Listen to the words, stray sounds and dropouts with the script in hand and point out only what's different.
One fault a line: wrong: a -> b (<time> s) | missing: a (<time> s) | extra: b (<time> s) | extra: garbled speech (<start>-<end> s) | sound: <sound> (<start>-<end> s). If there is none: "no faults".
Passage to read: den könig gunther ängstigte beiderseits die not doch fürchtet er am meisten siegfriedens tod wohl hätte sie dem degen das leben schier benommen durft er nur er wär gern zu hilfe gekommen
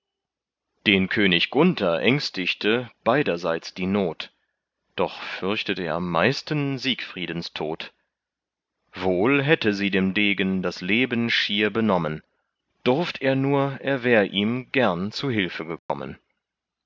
extra: ihm (14.3 s)
sound: dropout (15.8-15.9 s)